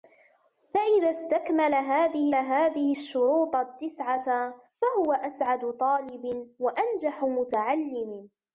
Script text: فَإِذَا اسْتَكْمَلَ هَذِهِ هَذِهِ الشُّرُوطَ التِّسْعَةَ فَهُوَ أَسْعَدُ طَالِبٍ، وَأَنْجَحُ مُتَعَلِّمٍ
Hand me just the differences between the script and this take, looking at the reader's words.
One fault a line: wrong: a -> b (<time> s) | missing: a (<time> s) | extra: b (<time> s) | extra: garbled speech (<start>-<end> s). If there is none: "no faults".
no faults